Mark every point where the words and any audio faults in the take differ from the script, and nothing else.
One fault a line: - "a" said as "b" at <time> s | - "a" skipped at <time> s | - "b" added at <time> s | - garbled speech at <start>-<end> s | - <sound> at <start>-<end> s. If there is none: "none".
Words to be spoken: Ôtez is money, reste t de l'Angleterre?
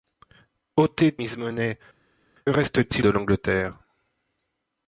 none